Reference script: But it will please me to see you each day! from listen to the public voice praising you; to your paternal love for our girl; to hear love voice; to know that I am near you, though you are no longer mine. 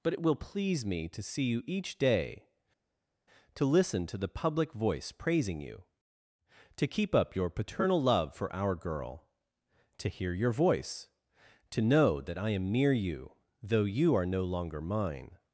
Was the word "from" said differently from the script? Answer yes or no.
yes